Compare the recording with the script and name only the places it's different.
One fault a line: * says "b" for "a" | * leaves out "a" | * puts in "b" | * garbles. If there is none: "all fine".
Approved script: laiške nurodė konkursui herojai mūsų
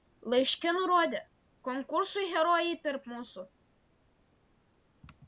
* puts in "tarp"